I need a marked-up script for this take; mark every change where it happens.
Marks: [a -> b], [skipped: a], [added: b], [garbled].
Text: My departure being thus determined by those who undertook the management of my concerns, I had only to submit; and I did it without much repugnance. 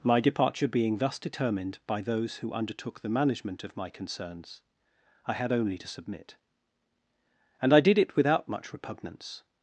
My departure being thus determined by those who undertook the management of my concerns, I had only to submit; and I did it without much repugnance.